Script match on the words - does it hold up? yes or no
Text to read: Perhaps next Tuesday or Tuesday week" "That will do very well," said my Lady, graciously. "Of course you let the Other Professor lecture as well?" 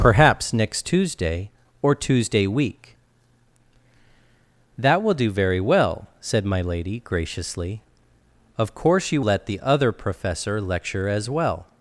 yes